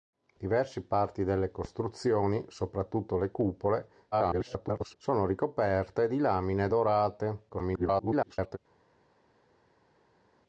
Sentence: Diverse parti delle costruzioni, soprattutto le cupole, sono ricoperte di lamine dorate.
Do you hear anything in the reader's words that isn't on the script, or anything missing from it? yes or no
yes